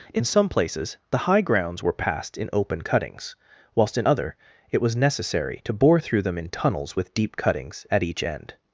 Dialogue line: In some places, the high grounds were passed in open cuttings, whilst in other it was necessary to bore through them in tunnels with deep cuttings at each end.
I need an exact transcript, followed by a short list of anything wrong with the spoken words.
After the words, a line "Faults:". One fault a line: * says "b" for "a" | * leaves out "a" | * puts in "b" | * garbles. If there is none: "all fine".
In some places, the high grounds were passed in open cuttings, whilst in other it was necessary to bore through them in tunnels with deep cuttings at each end.
Faults:
all fine